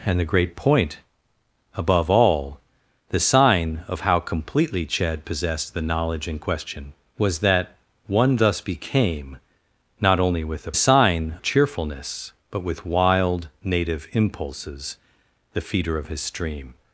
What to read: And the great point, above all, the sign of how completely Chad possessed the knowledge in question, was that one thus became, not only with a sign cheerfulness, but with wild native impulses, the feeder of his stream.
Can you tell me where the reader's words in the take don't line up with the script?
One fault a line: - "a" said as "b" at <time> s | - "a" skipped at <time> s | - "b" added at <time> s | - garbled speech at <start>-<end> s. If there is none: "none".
none